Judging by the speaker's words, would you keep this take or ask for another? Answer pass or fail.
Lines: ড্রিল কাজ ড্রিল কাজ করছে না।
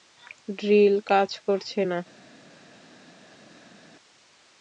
fail